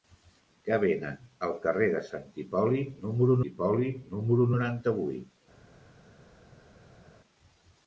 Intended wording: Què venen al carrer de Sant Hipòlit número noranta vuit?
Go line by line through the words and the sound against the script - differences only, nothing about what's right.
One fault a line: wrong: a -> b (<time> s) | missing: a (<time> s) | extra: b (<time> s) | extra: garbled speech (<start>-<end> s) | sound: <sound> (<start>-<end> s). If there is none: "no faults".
extra: Hipòlit número (3.5 s)